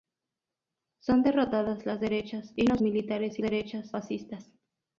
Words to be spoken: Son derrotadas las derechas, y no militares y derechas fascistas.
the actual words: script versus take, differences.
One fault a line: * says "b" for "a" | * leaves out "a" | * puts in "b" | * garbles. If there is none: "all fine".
all fine